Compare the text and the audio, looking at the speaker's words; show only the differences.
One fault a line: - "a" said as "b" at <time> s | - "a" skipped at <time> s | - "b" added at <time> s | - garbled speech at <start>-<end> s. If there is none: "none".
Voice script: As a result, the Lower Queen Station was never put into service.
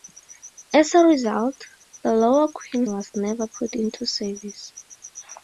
- "Station" skipped at 2.9 s